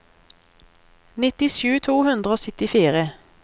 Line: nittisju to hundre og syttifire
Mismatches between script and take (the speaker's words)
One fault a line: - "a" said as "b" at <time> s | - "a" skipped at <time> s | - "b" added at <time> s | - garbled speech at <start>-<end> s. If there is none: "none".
none